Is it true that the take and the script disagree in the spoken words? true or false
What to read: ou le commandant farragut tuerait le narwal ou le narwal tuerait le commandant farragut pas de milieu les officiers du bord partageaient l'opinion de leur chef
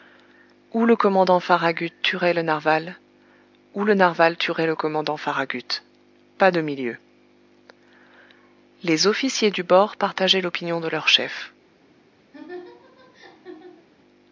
false